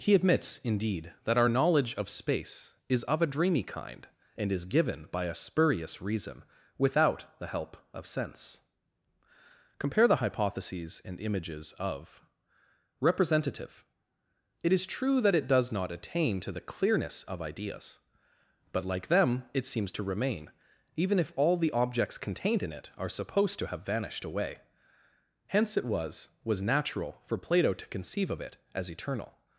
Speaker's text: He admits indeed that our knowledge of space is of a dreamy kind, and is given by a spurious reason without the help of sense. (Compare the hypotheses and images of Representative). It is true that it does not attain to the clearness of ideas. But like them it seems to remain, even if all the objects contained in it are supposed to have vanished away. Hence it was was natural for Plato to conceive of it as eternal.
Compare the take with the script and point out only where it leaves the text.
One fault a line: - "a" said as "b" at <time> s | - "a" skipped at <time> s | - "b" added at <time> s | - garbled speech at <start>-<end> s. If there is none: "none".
none